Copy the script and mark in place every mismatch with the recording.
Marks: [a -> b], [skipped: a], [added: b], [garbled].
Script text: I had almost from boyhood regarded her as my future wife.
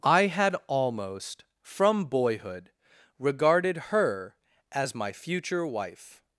I had almost from boyhood regarded her as my future wife.